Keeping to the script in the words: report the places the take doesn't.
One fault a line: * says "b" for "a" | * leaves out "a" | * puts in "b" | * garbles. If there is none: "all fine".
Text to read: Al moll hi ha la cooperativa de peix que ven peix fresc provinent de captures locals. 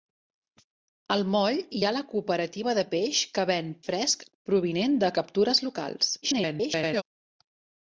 * leaves out "peix"
* garbles